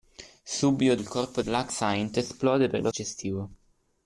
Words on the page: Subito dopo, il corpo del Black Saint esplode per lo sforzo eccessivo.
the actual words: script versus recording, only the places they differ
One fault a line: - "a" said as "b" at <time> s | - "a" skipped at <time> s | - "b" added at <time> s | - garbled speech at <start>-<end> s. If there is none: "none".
- "dopo" skipped at 0.9 s
- "del" skipped at 1.4 s
- "sforzo" skipped at 2.9 s